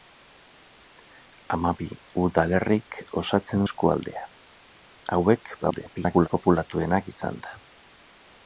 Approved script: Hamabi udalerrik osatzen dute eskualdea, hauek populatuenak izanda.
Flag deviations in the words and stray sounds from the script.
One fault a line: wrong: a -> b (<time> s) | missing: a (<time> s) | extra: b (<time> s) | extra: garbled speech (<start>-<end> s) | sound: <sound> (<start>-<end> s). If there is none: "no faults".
missing: dute (3.6 s)
extra: garbled speech (5.6-6.3 s)